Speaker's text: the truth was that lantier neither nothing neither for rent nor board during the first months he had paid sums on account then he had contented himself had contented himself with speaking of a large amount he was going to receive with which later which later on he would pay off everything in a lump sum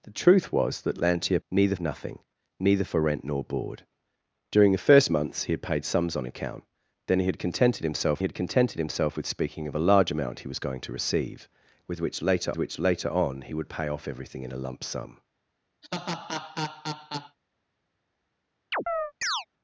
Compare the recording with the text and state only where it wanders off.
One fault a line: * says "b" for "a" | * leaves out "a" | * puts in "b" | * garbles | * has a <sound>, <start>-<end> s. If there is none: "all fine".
* has a laugh, 15.8-17.4 s
* has a chirp, 18.7-19.5 s